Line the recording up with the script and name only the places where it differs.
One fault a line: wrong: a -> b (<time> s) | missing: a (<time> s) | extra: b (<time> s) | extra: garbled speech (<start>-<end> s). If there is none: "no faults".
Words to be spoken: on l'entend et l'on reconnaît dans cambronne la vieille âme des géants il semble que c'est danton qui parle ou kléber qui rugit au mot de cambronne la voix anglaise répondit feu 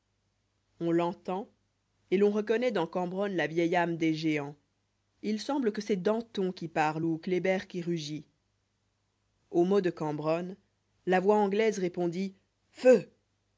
no faults